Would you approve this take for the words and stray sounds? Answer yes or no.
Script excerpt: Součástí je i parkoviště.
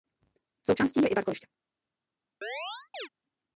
no